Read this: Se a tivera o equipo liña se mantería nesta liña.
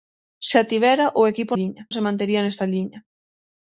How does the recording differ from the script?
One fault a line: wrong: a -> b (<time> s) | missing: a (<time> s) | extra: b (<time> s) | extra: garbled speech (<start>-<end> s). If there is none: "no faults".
no faults